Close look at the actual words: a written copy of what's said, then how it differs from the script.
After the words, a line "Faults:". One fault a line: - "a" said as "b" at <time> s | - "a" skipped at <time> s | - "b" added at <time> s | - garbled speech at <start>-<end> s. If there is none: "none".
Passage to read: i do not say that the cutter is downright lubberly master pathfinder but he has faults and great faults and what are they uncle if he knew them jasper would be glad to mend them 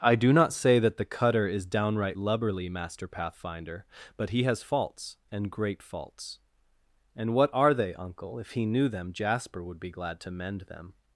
i do not say that the cutter is downright lubberly master pathfinder but he has faults and great faults and what are they uncle if he knew them jasper would be glad to mend them
Faults:
none